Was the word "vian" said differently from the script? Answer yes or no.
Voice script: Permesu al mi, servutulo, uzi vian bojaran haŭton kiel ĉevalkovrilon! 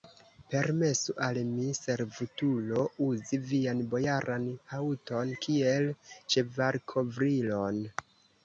no